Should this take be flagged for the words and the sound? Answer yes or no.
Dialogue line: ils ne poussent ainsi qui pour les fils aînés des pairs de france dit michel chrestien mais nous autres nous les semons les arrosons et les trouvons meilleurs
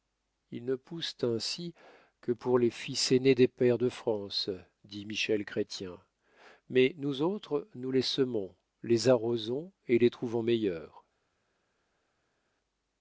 yes